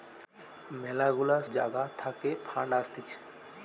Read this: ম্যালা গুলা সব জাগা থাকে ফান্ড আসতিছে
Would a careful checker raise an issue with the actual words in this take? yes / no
yes